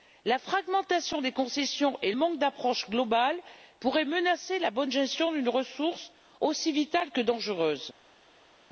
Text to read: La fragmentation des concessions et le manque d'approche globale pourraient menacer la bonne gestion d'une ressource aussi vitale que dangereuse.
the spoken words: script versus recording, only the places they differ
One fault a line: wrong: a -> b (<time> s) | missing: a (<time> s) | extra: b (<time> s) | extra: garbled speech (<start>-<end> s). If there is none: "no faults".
missing: le (2.1 s)